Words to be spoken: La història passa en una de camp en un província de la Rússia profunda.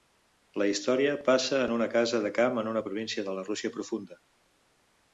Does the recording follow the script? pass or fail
fail